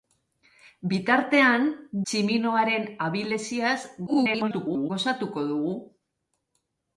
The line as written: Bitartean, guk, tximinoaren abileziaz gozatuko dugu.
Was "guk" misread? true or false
true